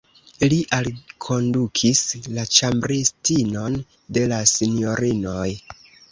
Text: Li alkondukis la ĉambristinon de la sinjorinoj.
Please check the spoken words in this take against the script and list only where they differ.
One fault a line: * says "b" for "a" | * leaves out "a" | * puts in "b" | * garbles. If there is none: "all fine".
all fine